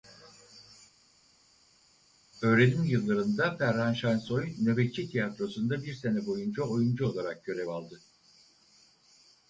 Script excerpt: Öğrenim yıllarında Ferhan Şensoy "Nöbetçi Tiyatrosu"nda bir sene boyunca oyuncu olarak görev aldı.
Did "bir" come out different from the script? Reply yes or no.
no